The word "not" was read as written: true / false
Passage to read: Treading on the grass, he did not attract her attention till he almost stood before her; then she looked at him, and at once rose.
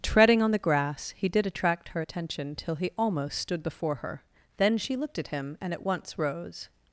false